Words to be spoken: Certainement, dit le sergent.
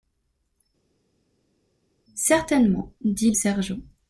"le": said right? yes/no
no